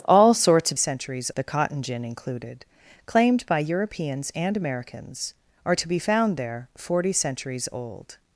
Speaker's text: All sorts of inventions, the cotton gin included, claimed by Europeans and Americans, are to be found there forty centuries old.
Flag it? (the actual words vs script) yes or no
yes